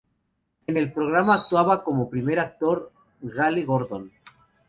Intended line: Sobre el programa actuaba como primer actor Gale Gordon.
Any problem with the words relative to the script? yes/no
yes